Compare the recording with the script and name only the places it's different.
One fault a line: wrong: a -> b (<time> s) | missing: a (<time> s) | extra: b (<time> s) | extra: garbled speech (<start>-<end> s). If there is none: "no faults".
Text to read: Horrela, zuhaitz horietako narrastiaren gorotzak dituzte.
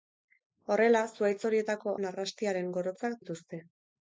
no faults